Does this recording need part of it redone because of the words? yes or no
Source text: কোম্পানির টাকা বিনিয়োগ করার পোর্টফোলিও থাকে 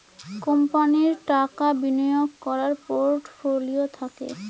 no